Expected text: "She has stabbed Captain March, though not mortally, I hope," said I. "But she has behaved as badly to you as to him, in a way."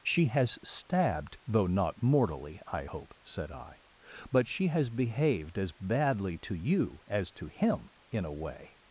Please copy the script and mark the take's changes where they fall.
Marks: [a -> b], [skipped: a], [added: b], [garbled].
"She has stabbed [skipped: Captain March,] though not mortally, I hope," said I. "But she has behaved as badly to you as to him, in a way."